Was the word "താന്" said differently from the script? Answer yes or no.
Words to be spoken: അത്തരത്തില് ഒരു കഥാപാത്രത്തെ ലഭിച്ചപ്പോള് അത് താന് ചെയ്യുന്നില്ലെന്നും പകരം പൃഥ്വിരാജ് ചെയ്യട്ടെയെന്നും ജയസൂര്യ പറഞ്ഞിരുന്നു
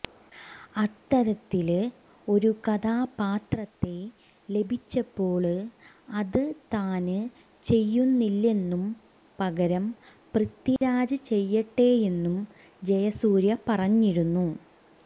no